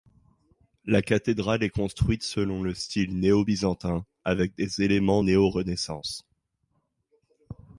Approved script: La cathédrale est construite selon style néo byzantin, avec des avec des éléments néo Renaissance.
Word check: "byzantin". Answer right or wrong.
right